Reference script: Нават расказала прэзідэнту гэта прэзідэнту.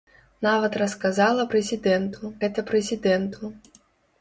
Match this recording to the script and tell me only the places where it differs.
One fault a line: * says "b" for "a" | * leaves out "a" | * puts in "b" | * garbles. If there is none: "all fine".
all fine